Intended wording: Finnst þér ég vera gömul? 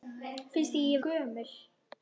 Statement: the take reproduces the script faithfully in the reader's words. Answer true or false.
false